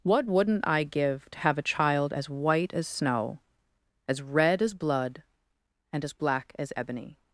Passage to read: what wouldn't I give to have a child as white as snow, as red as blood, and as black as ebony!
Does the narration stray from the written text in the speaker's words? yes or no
no